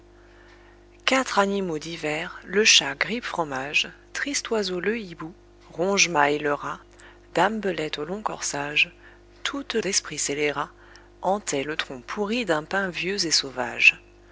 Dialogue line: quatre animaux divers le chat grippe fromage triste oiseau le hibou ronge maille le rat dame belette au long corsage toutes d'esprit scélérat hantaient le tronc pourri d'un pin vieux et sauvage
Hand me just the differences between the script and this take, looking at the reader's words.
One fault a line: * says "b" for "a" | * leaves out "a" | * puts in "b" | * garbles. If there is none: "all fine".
all fine